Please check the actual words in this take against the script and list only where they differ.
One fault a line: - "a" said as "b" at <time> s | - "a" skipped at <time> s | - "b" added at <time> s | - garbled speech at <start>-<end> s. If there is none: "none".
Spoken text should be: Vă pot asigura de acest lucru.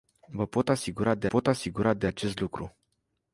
- "pot asigura de" added at 1.2 s